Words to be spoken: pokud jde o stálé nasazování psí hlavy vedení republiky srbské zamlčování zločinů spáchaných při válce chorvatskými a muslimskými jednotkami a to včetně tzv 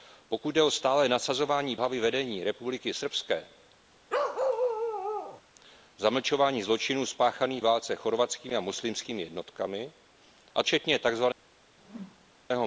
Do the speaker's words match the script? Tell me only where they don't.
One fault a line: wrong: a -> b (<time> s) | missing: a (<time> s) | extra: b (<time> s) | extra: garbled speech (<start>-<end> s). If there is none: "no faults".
missing: psí (1.8 s)
missing: při (7.6 s)
missing: to (10.6 s)